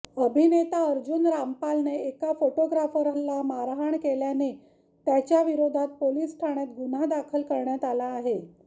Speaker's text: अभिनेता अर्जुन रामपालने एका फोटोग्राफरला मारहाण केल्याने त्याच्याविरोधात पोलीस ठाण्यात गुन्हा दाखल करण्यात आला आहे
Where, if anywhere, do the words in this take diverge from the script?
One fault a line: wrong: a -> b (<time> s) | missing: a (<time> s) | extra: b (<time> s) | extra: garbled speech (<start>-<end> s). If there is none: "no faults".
no faults